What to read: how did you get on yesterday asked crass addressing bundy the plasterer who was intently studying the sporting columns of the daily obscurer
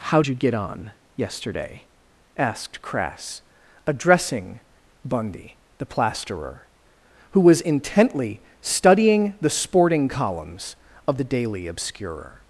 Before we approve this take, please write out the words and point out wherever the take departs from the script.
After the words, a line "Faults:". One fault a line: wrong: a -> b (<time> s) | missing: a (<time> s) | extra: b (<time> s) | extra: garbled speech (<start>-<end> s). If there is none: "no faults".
how you get on yesterday asked crass addressing bundy the plasterer who was intently studying the sporting columns of the daily obscurer
Faults:
missing: did (0.2 s)